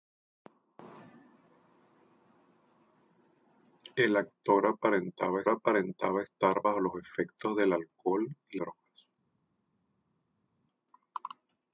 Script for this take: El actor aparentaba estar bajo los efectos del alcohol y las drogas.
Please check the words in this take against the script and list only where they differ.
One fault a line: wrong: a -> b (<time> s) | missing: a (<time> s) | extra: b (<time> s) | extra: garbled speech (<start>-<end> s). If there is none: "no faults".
extra: aparentaba (5.5 s)
missing: las (8.6 s)